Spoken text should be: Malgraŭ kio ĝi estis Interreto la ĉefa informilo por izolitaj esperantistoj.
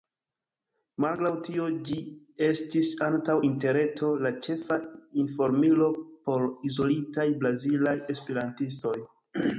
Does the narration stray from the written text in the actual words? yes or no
yes